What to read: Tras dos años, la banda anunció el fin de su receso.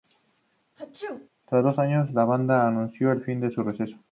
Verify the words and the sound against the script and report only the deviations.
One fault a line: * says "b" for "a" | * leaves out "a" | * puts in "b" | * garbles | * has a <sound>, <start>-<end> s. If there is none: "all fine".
* has a sneeze, 0.8-1.3 s